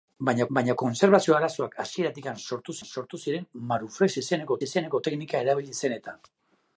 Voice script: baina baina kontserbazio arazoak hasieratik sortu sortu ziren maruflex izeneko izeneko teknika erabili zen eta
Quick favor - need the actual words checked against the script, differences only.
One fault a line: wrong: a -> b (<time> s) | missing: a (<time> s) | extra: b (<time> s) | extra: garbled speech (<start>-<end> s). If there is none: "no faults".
no faults